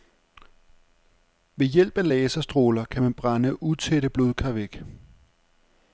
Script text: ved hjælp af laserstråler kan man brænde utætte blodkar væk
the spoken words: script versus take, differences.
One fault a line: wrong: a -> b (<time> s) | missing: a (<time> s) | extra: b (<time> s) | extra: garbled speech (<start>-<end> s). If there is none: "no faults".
no faults